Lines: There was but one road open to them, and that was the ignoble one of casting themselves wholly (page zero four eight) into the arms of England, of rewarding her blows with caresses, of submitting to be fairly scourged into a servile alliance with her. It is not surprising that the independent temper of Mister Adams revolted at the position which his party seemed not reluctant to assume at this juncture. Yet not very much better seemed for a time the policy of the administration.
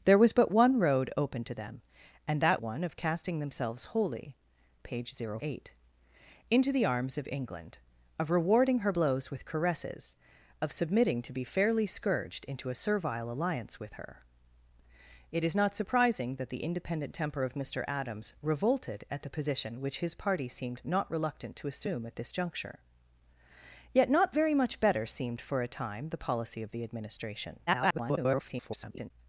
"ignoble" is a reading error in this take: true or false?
true